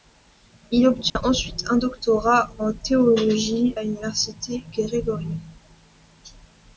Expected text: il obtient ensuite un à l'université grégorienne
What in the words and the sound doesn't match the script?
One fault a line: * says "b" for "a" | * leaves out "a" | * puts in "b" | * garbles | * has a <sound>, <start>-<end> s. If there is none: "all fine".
* has a dropout, 1.1-1.2 s
* puts in "doctorat en théologie"